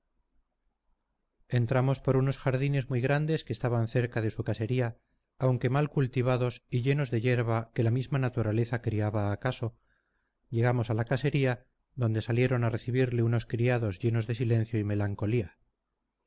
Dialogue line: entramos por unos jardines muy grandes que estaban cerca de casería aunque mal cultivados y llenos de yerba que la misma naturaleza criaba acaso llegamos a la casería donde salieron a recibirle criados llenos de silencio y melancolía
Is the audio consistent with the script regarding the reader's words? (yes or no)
no